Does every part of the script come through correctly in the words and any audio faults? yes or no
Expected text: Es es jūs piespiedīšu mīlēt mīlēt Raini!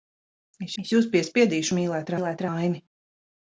yes